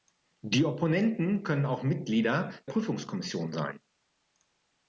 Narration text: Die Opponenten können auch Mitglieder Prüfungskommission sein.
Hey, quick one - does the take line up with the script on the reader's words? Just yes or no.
yes